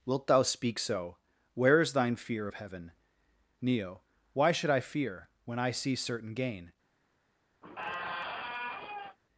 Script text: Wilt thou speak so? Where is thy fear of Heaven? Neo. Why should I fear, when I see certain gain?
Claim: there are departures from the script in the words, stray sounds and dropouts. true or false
true